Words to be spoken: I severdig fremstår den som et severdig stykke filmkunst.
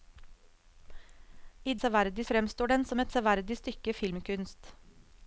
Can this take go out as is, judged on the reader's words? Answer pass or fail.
pass